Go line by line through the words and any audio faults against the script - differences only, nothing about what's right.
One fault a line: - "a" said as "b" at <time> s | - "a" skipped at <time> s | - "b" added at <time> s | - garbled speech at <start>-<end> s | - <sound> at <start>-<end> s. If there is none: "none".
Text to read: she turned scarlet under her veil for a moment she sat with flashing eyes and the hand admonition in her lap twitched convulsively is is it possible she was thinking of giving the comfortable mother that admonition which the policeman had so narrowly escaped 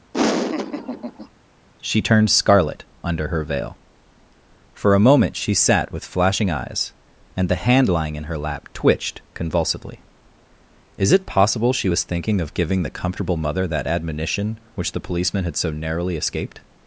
- laugh at 0.1-1.3 s
- "admonition" said as "lying" at 7.9 s
- "is" skipped at 11.1 s